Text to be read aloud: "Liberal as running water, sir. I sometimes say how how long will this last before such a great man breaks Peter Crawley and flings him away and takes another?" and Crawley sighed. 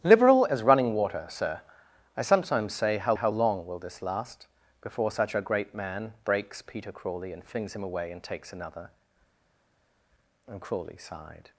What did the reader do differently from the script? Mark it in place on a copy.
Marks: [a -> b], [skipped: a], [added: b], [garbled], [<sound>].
"Liberal as running water, sir. I sometimes say how how long will this last before such a great man breaks Peter Crawley and flings him away and takes another?" and Crawley sighed.